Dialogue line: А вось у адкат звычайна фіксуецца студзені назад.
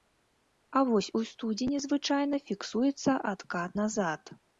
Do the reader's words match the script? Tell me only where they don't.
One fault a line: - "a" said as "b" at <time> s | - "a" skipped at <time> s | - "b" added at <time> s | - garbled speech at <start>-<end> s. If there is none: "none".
- "адкат" said as "студзені" at 1.3 s
- "студзені" said as "адкат" at 3.3 s